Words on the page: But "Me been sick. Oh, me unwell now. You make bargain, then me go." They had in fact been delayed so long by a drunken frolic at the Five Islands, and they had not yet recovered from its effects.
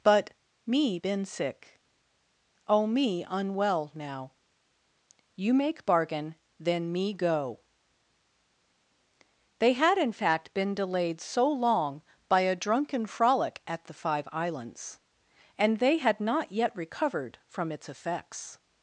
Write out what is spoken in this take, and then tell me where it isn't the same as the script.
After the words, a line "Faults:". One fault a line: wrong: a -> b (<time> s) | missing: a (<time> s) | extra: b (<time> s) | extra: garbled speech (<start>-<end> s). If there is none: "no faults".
But "Me been sick. Oh, me unwell now. You make bargain, then me go." They had in fact been delayed so long by a drunken frolic at the Five Islands, and they had not yet recovered from its effects.
Faults:
no faults